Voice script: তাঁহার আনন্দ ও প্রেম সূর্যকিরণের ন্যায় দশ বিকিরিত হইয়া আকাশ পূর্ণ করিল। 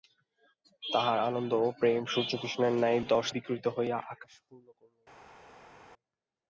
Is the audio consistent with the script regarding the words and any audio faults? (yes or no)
yes